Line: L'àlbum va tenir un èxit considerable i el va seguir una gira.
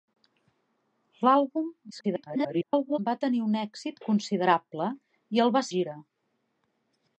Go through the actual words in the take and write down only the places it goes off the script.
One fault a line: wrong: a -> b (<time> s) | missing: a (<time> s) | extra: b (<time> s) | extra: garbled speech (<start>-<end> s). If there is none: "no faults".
extra: garbled speech (1.9-3.0 s)
missing: seguir una (5.7 s)